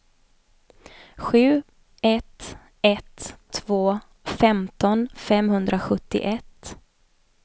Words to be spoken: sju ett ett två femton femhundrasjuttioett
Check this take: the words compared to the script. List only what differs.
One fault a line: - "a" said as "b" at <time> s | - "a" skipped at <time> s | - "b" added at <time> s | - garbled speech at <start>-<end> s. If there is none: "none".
none